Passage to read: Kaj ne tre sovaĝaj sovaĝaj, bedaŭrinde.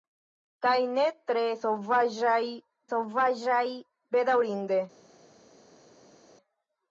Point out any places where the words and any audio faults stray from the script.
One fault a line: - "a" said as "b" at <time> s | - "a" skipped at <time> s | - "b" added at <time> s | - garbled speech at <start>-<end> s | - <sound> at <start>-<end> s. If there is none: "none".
none